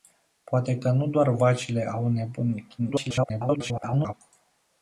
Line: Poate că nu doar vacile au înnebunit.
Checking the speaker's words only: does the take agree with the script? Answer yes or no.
no